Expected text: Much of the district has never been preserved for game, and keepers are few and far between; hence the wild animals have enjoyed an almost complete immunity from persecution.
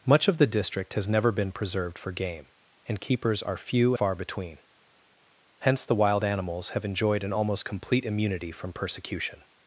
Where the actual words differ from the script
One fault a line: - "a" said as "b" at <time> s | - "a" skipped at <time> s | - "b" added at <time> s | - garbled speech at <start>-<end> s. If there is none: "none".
- "and" skipped at 3.9 s